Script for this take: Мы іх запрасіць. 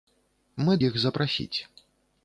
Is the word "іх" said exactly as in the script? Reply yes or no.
yes